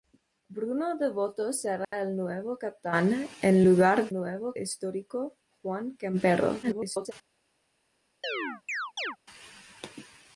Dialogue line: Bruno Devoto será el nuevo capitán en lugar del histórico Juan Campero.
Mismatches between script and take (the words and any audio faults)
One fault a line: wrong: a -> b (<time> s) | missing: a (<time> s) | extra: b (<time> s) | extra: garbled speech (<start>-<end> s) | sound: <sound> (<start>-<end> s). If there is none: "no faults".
sound: dropout (1.8-1.9 s)
wrong: del -> nuevo (4.1 s)
extra: garbled speech (6.6-7.1 s)
sound: chirp (8.2-9.2 s)